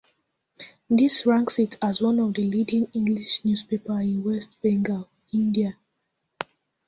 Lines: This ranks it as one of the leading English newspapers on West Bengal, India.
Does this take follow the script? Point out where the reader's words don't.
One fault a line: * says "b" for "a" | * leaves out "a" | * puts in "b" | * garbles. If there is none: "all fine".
* says "in" for "on"